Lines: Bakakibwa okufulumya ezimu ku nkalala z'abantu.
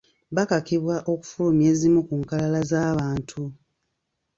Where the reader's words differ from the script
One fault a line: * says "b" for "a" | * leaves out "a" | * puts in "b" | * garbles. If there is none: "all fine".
all fine